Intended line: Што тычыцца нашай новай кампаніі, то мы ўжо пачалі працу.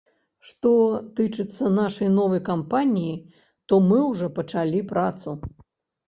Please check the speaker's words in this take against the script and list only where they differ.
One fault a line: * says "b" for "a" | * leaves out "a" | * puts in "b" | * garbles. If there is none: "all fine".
all fine